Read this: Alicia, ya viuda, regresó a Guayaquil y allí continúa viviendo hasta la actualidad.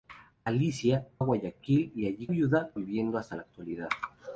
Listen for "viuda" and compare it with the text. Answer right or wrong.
wrong